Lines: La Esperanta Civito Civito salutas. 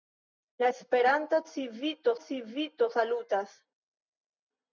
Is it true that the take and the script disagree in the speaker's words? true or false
false